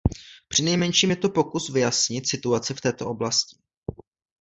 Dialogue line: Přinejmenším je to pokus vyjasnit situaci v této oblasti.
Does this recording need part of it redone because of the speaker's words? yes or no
no